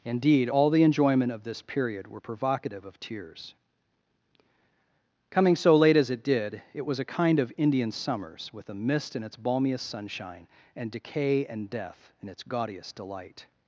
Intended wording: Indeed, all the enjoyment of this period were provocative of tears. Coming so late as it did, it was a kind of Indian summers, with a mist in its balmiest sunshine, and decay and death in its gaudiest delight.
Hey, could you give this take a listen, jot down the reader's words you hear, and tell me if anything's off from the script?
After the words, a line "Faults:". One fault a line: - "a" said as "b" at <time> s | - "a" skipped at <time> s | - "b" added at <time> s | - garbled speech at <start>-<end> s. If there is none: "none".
Indeed, all the enjoyment of this period were provocative of tears. Coming so late as it did, it was a kind of Indian summers, with a mist in its balmiest sunshine, and decay and death in its gaudiest delight.
Faults:
none